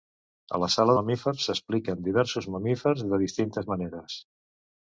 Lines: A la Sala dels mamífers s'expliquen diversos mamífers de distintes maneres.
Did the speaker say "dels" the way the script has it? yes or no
no